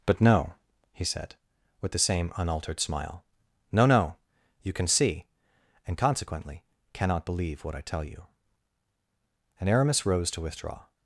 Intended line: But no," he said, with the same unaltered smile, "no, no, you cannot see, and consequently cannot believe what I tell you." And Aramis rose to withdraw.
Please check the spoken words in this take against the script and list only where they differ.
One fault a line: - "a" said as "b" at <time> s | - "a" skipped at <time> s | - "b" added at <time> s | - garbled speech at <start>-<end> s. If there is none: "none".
- "cannot" said as "can" at 4.7 s